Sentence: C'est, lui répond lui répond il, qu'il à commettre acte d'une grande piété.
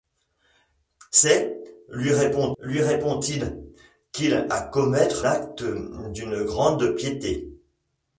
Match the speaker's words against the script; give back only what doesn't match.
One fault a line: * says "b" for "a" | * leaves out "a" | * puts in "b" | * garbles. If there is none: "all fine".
all fine